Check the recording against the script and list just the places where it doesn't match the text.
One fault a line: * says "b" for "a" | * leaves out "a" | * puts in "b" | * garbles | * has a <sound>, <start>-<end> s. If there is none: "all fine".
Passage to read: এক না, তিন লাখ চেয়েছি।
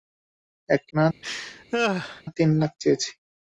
* has a laugh, 1.2-2.2 s